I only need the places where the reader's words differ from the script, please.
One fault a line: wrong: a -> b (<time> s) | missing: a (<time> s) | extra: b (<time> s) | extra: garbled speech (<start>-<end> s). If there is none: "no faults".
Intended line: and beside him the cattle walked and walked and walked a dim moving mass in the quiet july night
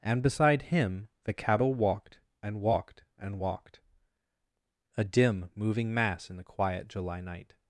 no faults